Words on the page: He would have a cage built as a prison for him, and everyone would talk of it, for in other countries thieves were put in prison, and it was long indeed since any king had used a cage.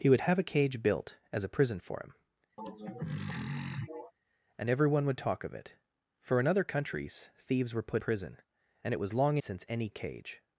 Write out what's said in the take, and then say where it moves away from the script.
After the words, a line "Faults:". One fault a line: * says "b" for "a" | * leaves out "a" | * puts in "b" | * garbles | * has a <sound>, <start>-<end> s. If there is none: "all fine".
He would have a cage built as a prison for him, and everyone would talk of it, for in other countries thieves were put prison, and it was long since any a cage.
Faults:
* has a throat clearing, 2.6-4.1 s
* leaves out "in"
* leaves out "indeed"
* leaves out "king had used"